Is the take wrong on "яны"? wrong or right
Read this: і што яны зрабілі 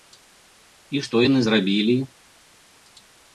right